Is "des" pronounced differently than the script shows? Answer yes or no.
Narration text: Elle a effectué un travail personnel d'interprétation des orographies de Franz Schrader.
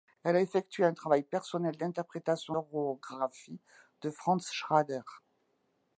yes